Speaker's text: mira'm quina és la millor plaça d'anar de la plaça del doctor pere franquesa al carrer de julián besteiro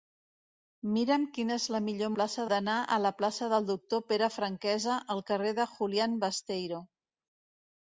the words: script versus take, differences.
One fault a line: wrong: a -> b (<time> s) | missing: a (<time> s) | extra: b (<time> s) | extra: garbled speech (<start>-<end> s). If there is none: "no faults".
no faults